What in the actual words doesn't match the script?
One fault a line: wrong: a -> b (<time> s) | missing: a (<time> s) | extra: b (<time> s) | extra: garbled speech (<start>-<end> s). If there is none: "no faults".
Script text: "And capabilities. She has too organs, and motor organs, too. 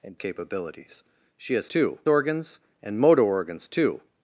no faults